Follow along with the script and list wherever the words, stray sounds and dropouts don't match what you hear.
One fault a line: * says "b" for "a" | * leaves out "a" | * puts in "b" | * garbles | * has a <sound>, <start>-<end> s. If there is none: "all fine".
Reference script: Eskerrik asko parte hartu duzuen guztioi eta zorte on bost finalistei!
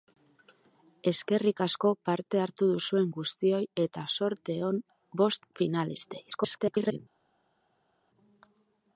* garbles